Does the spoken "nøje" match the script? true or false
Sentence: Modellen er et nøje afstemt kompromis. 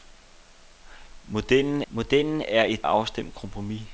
false